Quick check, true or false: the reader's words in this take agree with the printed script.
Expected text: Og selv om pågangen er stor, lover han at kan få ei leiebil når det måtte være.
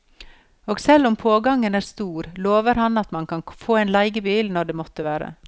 false